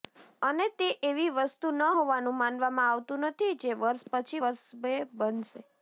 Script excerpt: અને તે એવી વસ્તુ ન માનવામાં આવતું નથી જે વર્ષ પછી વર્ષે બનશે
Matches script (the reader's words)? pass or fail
fail